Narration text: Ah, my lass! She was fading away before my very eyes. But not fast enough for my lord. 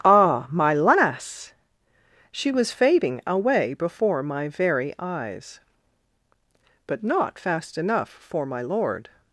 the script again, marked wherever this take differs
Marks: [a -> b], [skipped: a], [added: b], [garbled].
Ah, my lass! She was fading away before my very eyes. But not fast enough for my lord.